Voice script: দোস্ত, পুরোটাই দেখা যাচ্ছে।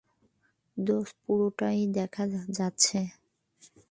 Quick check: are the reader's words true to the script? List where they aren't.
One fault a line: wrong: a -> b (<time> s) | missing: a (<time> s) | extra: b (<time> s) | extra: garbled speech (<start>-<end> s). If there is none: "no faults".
no faults